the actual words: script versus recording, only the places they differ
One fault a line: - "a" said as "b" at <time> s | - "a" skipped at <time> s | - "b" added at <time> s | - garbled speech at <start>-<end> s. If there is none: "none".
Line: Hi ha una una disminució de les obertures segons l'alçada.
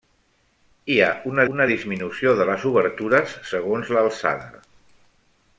none